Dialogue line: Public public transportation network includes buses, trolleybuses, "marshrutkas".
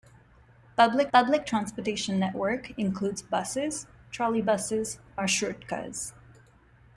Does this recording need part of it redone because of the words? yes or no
no